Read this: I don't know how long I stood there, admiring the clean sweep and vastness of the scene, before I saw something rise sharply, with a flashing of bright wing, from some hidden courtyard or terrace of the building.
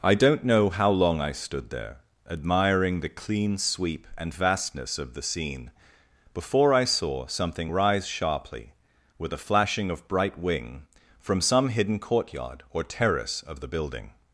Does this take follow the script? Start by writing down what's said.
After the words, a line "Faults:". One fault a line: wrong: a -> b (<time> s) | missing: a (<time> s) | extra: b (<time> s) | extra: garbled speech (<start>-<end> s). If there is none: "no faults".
I don't know how long I stood there, admiring the clean sweep and vastness of the scene, before I saw something rise sharply, with a flashing of bright wing, from some hidden courtyard or terrace of the building.
Faults:
no faults